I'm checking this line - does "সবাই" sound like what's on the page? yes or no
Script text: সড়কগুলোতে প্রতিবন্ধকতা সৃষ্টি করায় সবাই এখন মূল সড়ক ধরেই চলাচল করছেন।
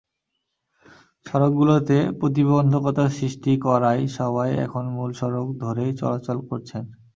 yes